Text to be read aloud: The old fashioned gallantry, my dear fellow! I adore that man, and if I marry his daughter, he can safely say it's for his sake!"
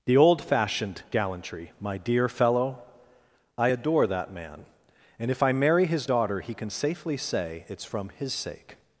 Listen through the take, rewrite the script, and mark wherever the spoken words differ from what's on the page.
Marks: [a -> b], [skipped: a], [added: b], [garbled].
The old fashioned gallantry, my dear fellow! I adore that man, and if I marry his daughter, he can safely say it's [for -> from] his sake!"